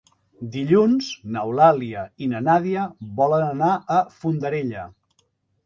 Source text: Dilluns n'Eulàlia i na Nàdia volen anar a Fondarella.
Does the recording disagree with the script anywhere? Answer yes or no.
no